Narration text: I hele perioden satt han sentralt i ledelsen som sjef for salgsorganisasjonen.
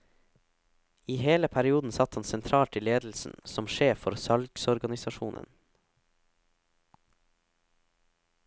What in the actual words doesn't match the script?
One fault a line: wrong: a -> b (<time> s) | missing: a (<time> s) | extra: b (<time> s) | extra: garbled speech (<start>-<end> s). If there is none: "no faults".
no faults